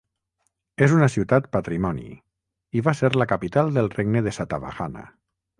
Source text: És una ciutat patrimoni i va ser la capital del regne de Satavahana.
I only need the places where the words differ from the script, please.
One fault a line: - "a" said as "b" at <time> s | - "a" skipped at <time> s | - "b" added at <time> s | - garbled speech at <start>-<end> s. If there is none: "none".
none